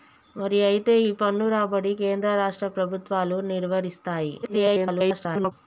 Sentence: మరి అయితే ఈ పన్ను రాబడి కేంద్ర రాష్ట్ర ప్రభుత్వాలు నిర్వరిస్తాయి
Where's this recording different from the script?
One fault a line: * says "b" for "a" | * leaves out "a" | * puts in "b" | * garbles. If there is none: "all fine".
* garbles